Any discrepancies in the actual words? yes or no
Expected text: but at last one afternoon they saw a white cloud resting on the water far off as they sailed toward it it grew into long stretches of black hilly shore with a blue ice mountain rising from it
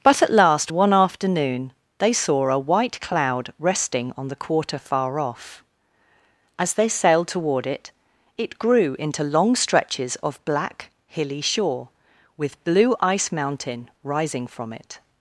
yes